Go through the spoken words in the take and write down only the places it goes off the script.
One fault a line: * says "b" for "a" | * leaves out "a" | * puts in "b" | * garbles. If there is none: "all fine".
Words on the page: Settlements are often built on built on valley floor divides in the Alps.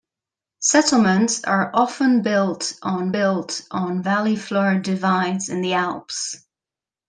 all fine